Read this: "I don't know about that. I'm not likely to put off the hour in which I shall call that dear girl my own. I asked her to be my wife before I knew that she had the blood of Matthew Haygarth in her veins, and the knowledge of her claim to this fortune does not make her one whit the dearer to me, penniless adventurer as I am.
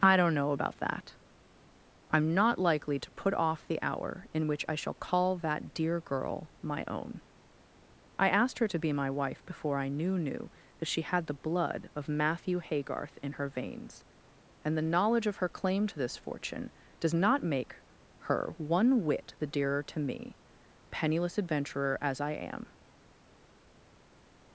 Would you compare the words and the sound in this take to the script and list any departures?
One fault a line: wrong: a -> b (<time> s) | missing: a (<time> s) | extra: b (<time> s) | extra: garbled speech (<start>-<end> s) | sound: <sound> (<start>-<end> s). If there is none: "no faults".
extra: knew (10.2 s)